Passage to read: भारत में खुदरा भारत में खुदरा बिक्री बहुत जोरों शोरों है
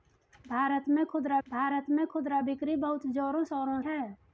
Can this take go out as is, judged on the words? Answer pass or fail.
pass